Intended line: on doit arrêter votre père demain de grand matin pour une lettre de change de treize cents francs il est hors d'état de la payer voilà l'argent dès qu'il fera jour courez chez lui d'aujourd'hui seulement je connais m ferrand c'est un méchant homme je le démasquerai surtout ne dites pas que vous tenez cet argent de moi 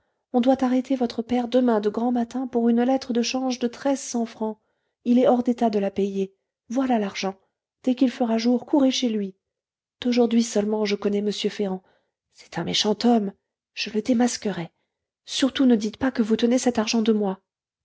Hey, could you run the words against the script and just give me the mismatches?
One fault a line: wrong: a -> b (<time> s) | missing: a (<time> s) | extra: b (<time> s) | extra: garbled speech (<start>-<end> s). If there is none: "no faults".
no faults